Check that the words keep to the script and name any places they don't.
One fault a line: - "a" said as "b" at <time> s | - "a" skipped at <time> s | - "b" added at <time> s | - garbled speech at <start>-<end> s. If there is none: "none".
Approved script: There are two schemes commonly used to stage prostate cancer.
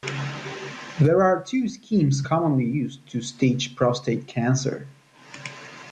none